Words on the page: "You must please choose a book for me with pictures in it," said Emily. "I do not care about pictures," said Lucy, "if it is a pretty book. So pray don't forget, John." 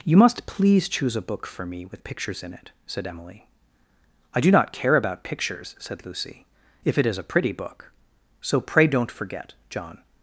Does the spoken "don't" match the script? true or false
true